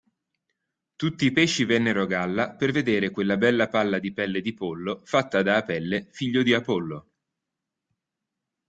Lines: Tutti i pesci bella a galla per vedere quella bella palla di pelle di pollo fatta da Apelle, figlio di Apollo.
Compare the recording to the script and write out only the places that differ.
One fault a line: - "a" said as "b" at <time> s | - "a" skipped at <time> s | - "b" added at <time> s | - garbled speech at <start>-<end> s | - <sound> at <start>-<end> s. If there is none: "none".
- "bella" said as "vennero" at 1.6 s